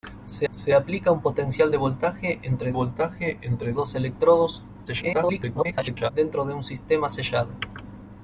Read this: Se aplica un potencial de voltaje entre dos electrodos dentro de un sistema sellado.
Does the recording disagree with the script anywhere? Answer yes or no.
yes